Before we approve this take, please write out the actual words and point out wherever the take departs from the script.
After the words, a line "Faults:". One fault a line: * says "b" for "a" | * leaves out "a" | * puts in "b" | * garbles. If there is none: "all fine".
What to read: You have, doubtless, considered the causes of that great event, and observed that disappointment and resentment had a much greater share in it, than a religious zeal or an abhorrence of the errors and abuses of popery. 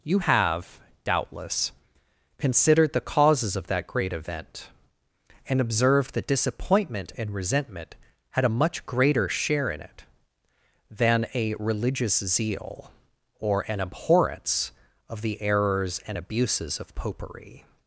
You have, doubtless, considered the causes of that great event, and observed that disappointment and resentment had a much greater share in it, than a religious zeal or an abhorrence of the errors and abuses of popery.
Faults:
all fine